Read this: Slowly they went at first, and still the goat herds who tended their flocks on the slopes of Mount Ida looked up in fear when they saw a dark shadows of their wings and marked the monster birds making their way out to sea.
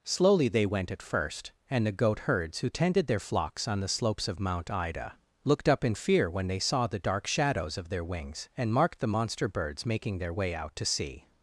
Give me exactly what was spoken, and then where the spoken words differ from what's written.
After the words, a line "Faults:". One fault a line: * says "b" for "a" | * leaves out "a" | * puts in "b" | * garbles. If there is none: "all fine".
Slowly they went at first, and the goat herds who tended their flocks on the slopes of Mount Ida looked up in fear when they saw the dark shadows of their wings and marked the monster birds making their way out to sea.
Faults:
* leaves out "still"
* says "the" for "a"